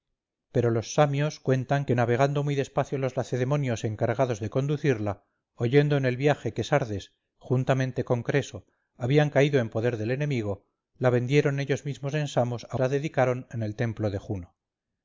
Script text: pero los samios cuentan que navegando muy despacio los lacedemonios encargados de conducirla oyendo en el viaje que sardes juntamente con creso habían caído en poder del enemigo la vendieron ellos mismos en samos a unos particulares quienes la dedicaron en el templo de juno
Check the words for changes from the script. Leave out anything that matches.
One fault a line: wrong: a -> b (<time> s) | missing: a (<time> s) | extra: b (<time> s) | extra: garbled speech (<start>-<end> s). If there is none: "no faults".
missing: unos particulares quienes (12.8 s)